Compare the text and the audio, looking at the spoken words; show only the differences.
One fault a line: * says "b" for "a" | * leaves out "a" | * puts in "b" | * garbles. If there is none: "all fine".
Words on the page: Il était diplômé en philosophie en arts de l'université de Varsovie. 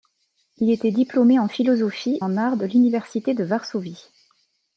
all fine